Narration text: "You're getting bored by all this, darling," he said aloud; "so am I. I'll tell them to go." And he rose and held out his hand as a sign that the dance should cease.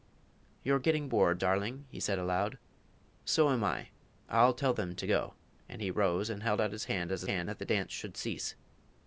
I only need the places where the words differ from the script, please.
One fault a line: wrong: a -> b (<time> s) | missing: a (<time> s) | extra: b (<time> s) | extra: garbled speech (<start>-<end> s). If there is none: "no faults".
missing: by all this (1.4 s)
wrong: sign -> hand (7.2 s)